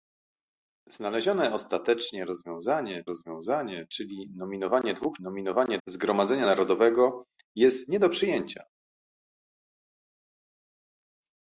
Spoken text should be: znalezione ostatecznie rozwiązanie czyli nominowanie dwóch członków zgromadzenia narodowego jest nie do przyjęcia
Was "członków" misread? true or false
true